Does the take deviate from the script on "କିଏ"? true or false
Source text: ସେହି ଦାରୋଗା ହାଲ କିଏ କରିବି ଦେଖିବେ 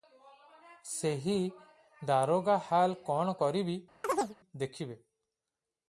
true